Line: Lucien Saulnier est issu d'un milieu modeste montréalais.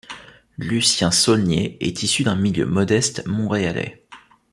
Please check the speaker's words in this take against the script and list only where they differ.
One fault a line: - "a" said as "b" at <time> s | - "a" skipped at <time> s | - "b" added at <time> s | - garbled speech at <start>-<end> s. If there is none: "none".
none